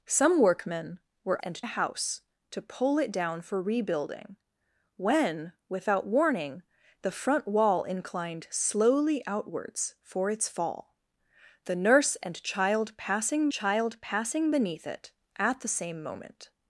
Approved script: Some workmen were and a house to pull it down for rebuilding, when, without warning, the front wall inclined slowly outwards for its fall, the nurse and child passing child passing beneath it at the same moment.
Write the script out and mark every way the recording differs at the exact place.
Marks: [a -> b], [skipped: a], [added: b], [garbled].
Some workmen were and a house to pull it down for rebuilding, when, without warning, the front wall inclined slowly outwards for its fall, the nurse and child passing child passing beneath it at the same moment.